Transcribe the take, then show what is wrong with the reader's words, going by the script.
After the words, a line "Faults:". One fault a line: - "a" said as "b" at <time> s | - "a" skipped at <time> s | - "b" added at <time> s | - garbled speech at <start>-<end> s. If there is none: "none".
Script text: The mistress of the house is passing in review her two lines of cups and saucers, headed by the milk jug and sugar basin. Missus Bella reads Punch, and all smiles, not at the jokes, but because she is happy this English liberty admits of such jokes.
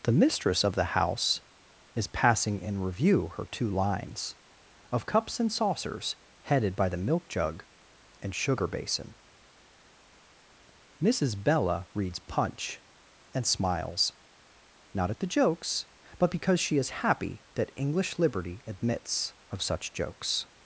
The mistress of the house is passing in review her two lines of cups and saucers, headed by the milk jug and sugar basin. Missus Bella reads Punch, and smiles, not at the jokes, but because she is happy that English liberty admits of such jokes.
Faults:
- "all" skipped at 13.4 s
- "this" said as "that" at 17.5 s